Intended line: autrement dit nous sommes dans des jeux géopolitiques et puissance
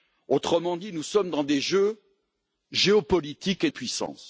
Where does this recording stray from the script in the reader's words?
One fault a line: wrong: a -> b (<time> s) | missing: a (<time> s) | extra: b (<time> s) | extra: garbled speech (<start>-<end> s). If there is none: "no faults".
no faults